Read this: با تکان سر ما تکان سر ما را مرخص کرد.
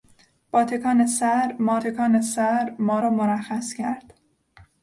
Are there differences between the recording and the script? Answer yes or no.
no